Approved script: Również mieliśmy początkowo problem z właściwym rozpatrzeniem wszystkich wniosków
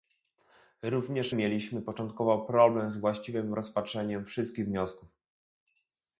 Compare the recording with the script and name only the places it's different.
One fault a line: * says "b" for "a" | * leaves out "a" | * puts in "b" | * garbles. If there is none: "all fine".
all fine